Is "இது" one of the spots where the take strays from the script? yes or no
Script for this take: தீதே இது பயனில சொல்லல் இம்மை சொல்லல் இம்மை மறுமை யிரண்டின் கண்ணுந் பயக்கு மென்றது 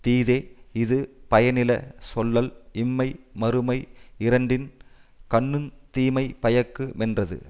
no